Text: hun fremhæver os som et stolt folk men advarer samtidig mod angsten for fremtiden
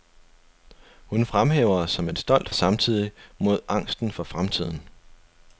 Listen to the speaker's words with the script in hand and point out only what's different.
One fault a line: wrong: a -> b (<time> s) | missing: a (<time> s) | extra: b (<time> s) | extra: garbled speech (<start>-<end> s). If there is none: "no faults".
missing: folk men advarer (2.5 s)